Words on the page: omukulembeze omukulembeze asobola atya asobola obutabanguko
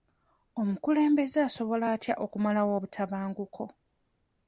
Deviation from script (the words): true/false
true